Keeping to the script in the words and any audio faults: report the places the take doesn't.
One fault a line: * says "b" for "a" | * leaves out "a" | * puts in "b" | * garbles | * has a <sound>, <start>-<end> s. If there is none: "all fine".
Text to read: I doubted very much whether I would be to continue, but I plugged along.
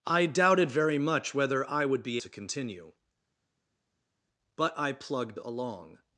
all fine